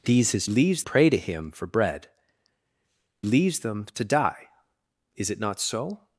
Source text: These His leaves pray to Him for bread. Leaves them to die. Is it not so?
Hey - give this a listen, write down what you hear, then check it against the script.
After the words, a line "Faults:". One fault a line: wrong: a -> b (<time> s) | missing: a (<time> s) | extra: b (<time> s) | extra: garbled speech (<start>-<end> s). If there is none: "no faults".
These His leaves pray to Him for bread. Leaves them to die. Is it not so?
Faults:
no faults